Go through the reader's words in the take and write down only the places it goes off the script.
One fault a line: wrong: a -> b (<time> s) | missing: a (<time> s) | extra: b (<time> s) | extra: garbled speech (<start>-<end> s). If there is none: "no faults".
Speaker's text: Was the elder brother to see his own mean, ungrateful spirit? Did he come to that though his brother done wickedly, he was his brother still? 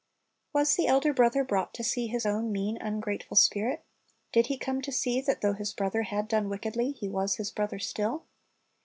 extra: brought (1.4 s)
extra: see (4.9 s)
extra: had (6.0 s)